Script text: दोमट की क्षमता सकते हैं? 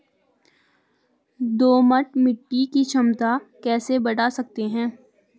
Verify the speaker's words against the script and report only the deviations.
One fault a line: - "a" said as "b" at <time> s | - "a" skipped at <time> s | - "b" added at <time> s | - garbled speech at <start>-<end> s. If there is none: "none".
- "मिट्टी" added at 2.2 s
- "कैसे बड़ा" added at 3.6 s